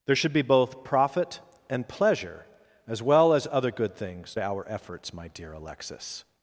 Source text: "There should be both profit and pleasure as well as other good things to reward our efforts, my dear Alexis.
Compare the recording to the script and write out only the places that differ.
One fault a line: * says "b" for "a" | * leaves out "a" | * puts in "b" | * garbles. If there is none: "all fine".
* leaves out "to reward"